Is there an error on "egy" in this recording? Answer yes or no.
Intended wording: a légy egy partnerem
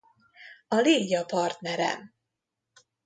yes